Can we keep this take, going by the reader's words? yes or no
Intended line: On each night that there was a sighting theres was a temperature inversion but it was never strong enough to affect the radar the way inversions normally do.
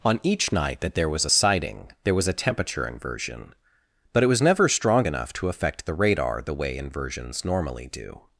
no